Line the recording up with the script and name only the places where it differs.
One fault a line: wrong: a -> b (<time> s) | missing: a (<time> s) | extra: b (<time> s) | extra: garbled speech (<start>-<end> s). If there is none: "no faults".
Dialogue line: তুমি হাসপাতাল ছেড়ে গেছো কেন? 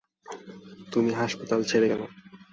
missing: গেছো (1.9 s)